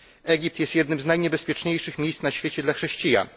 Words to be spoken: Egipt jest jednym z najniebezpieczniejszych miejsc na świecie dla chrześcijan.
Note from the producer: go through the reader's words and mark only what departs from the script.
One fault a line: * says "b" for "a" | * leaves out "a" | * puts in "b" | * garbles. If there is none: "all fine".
all fine